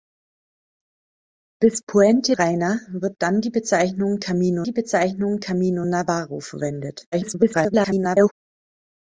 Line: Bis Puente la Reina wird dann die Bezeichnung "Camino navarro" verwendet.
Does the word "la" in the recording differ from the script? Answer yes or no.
yes